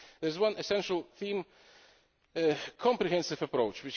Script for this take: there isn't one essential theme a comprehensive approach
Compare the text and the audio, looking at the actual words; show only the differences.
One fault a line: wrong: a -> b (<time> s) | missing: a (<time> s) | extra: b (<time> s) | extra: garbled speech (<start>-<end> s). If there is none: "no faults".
wrong: isn't -> is (0.3 s)